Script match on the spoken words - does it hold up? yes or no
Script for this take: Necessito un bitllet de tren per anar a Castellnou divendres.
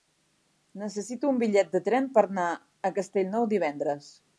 yes